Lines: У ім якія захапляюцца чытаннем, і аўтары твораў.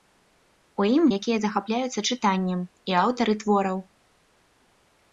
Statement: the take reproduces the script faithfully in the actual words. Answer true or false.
true